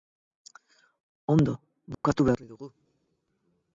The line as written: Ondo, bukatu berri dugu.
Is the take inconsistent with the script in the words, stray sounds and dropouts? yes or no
yes